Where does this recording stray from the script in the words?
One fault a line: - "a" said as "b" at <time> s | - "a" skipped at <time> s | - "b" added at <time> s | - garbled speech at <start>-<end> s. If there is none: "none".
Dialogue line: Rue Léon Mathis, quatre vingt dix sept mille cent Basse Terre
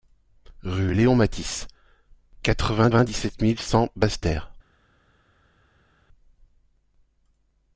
- "vingt" added at 2.9 s